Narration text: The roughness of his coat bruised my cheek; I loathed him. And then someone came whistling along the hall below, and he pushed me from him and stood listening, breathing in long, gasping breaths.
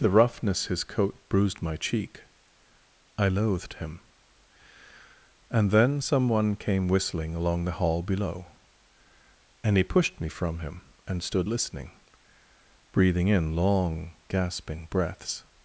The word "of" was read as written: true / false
false